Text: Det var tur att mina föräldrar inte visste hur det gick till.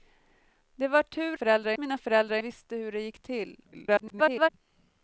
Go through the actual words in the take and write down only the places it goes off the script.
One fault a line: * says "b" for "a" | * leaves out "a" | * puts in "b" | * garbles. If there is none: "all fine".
* says "föräldrar" for "att"
* leaves out "inte"
* garbles